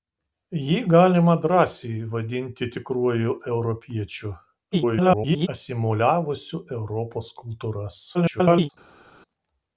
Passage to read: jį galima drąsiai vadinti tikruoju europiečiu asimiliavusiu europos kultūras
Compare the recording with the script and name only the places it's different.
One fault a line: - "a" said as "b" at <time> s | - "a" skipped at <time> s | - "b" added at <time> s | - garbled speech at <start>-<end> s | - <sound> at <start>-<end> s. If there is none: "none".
- garbled speech at 4.7-5.5 s
- garbled speech at 8.1-8.7 s